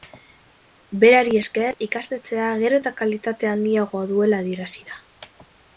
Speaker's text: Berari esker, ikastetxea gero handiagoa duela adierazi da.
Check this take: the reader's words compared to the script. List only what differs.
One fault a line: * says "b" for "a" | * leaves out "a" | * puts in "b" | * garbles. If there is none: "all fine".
* puts in "eta kalitate"